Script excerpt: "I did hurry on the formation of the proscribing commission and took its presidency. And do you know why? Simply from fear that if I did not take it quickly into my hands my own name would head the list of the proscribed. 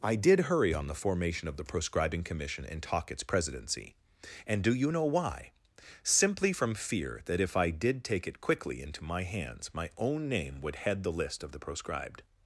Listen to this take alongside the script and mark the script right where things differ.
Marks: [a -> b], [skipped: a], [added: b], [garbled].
"I did hurry on the formation of the proscribing commission and [took -> talk] its presidency. And do you know why? Simply from fear that if I did [skipped: not] take it quickly into my hands my own name would head the list of the proscribed.